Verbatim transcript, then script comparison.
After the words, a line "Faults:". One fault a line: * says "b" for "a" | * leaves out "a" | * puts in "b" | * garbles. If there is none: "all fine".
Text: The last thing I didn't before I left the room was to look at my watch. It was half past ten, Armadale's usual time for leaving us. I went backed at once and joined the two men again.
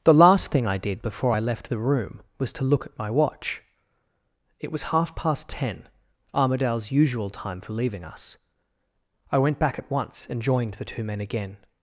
The last thing I did before I left the room was to look at my watch. It was half past ten, Armadale's usual time for leaving us. I went back at once and joined the two men again.
Faults:
* says "did" for "didn't"
* says "back" for "backed"